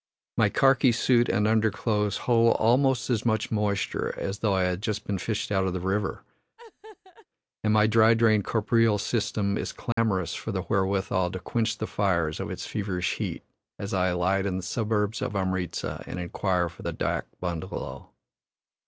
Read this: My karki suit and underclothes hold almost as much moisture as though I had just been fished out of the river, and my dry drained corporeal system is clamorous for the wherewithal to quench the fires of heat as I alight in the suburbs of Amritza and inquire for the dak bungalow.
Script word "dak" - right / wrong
right